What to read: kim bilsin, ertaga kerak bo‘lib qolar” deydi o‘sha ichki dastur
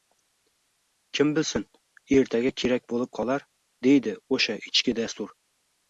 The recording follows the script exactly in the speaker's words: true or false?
true